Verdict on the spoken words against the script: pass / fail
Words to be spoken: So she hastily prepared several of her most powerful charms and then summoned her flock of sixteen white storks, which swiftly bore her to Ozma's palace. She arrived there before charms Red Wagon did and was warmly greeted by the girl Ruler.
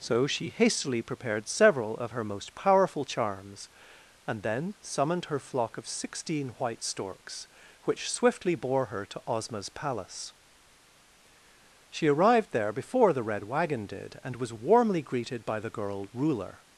fail